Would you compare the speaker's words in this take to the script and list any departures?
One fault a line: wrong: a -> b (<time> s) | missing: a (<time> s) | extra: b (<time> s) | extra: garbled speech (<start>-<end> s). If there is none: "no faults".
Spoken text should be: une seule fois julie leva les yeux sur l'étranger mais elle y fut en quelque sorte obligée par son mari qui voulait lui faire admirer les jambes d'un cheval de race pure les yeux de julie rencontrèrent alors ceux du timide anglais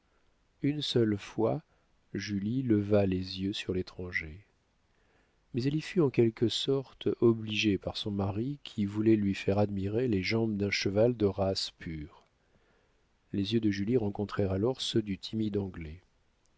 no faults